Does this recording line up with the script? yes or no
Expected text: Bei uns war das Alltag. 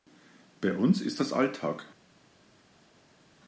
no